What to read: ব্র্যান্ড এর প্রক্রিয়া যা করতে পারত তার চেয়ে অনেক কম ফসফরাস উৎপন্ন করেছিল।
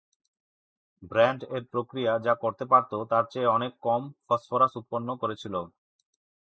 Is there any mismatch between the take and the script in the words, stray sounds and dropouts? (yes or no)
no